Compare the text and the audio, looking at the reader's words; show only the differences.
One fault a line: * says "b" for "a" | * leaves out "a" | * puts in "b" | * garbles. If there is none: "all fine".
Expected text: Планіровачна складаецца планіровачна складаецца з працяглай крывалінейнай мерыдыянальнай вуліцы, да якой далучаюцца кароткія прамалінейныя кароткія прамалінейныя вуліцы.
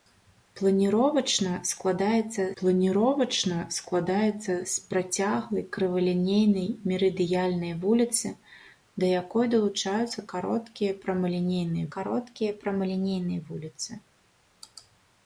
all fine